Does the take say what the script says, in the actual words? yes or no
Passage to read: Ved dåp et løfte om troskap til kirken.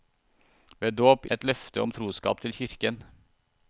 yes